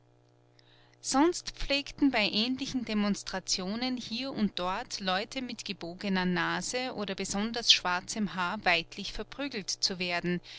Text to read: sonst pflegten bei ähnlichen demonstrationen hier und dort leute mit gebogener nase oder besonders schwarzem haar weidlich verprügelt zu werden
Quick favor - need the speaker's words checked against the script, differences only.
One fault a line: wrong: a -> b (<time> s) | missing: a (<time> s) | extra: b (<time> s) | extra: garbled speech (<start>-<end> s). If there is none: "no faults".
no faults